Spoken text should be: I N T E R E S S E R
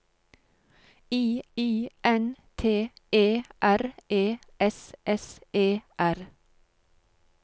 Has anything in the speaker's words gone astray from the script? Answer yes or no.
yes